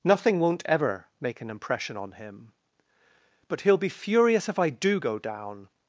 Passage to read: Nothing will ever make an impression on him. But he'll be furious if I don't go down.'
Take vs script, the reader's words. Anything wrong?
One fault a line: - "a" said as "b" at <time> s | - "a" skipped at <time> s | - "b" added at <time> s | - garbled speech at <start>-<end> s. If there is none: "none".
- "will" said as "won't" at 0.4 s
- "don't" said as "do" at 4.7 s